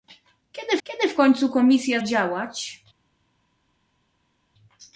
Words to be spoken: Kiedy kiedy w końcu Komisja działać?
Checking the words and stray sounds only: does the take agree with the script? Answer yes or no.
yes